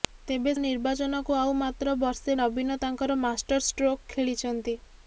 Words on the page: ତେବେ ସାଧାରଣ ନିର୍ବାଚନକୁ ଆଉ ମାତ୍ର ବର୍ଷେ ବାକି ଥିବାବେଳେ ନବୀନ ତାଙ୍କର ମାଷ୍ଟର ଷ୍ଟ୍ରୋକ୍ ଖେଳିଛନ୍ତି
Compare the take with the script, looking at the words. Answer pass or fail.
fail